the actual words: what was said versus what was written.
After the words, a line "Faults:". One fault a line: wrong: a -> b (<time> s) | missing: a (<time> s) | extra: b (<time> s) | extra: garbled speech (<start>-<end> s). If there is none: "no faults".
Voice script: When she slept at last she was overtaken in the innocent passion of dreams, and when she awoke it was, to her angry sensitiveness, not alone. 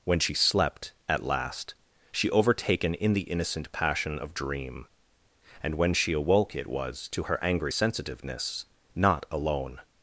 When she slept at last she overtaken in the innocent passion of dream, and when she awoke it was, to her angry sensitiveness, not alone.
Faults:
missing: was (2.3 s)
wrong: dreams -> dream (4.3 s)